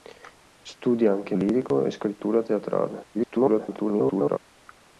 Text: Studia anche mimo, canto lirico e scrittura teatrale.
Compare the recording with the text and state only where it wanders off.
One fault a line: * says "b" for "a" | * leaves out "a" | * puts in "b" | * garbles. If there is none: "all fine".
* leaves out "mimo canto"
* garbles